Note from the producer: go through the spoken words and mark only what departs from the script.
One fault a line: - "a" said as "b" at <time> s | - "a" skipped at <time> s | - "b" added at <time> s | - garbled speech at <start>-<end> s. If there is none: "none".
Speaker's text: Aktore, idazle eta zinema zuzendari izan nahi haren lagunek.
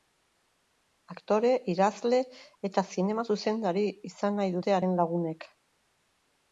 - "dute" added at 4.6 s